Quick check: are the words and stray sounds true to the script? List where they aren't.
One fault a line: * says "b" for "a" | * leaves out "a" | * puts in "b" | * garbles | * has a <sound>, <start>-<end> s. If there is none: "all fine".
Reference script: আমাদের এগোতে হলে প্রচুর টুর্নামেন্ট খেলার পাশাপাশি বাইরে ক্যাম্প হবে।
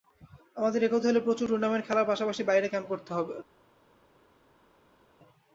* puts in "করতে"